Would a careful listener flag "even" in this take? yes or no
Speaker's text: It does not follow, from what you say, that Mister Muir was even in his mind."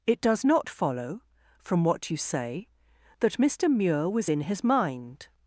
yes